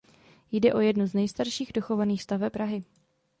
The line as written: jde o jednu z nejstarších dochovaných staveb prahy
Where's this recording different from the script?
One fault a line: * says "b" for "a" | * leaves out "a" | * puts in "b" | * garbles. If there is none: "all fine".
all fine